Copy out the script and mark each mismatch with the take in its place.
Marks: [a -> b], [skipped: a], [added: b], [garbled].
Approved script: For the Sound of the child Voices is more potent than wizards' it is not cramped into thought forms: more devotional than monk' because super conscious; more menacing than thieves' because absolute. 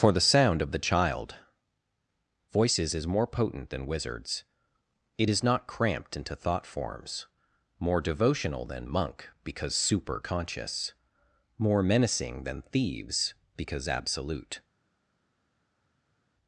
For the Sound of the child Voices is more potent than wizards' it is not cramped into thought forms: more devotional than monk' because super conscious; more menacing than thieves' because absolute.